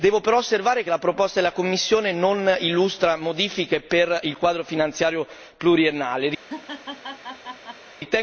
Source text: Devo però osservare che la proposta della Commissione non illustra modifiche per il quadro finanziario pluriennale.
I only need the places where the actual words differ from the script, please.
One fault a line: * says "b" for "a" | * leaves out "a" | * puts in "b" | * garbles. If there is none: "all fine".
all fine